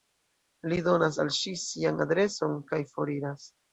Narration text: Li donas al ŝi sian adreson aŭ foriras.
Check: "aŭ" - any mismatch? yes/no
yes